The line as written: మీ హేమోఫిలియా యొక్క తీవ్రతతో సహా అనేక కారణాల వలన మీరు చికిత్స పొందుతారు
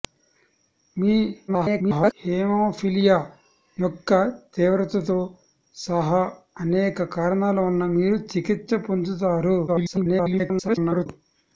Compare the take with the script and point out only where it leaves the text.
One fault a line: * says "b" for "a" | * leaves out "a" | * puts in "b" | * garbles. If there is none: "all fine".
* garbles
* garbles